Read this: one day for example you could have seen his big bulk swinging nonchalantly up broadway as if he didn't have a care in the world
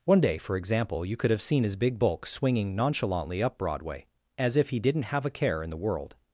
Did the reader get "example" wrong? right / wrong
right